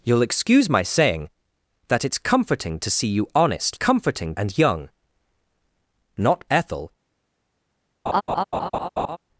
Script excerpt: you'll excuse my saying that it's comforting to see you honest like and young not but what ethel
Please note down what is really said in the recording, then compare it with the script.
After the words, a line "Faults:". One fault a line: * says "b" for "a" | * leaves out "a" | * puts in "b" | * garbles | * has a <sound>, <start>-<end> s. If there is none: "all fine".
you'll excuse my saying that it's comforting to see you honest comforting and young not ethel
Faults:
* says "comforting" for "like"
* leaves out "but what"
* has a laugh, 8.1-9.2 s